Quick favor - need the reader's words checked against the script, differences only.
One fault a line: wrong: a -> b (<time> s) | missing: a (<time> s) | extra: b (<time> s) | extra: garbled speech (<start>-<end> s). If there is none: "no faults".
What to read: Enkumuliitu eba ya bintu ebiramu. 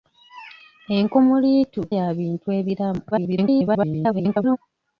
missing: eba (1.8 s)
extra: garbled speech (3.1-4.6 s)